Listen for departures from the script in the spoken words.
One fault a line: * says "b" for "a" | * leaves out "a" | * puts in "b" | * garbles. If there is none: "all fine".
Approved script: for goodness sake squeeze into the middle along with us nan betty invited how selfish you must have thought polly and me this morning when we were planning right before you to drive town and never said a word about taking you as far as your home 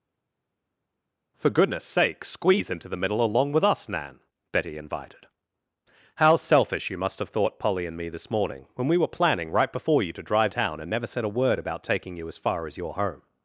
all fine